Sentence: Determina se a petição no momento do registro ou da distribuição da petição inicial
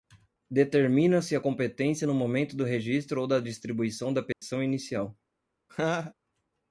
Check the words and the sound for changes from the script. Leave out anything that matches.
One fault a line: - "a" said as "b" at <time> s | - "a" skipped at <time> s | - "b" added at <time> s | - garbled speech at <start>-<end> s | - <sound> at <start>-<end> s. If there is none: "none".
- "petição" said as "competência" at 1.4 s
- dropout at 4.3-4.4 s
- laugh at 5.7-6.1 s